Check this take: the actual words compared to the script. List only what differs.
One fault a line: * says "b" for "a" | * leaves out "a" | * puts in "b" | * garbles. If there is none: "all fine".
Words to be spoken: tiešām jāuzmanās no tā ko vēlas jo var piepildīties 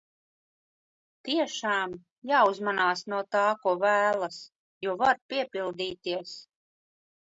all fine